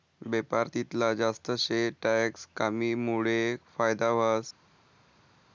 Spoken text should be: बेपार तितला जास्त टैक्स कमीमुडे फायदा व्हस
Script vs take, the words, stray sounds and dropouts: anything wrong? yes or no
yes